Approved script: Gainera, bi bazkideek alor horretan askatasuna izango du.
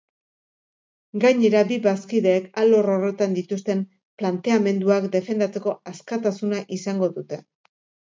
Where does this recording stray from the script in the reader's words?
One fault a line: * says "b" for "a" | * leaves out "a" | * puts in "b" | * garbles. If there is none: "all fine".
* puts in "dituzten planteamenduak defendatzeko"
* says "dute" for "du"